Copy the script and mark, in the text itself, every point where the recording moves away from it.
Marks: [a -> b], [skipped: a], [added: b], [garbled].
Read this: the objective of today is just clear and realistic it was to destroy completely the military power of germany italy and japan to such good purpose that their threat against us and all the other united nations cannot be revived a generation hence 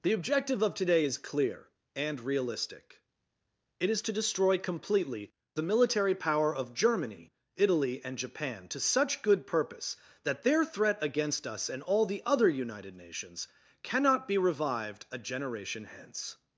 the objective of today is [skipped: just] clear and realistic it [was -> is] to destroy completely the military power of germany italy and japan to such good purpose that their threat against us and all the other united nations cannot be revived a generation hence